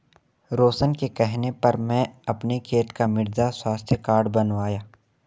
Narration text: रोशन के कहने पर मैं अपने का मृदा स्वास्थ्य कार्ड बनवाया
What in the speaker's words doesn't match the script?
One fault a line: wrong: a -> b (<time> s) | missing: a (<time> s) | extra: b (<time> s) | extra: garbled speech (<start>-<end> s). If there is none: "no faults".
extra: खेत (2.6 s)